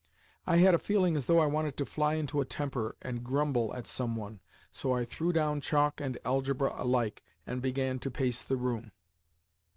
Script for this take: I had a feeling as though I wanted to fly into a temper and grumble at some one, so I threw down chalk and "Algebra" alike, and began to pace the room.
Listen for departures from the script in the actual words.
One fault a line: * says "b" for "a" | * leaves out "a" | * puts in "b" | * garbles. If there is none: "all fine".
all fine